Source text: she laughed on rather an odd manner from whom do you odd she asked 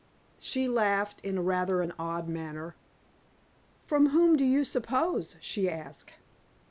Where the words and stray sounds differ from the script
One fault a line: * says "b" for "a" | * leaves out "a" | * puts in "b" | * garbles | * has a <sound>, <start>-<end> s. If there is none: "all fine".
* says "in" for "on"
* says "suppose" for "odd"